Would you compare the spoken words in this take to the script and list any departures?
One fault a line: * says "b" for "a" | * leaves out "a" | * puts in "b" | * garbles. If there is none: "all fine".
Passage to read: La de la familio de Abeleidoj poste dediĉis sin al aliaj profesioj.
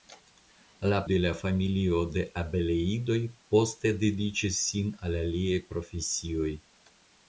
all fine